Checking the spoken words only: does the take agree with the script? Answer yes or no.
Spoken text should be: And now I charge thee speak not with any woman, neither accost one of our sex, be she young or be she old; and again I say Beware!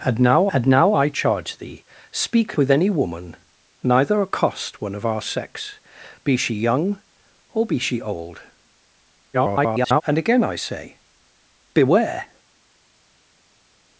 no